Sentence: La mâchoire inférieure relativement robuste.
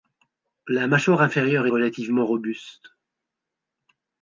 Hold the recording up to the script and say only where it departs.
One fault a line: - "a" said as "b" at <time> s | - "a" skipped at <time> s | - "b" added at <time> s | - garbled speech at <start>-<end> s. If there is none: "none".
none